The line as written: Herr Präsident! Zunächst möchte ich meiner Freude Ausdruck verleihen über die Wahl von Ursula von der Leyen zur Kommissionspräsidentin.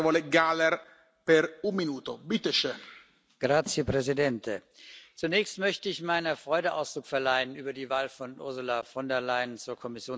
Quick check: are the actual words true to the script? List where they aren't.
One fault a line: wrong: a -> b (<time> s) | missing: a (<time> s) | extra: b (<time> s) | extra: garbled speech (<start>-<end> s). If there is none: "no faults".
no faults